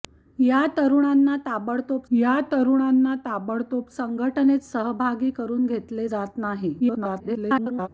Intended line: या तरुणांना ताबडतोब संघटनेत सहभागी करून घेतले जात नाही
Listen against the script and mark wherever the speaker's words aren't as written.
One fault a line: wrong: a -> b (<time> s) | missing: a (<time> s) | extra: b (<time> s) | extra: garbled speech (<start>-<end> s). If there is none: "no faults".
extra: या तरुणांना ताबडतोब (2.1 s)
extra: garbled speech (6.8-7.9 s)